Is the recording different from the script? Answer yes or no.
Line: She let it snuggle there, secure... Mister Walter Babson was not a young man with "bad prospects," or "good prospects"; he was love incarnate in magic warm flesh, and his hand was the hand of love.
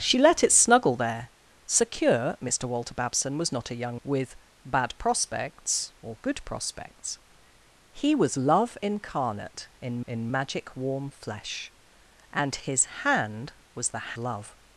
yes